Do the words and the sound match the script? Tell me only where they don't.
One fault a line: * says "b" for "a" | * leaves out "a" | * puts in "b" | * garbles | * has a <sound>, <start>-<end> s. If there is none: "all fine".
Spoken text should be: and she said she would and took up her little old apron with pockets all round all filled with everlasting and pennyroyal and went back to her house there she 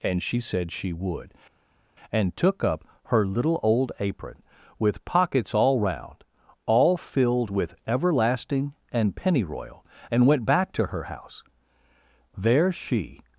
all fine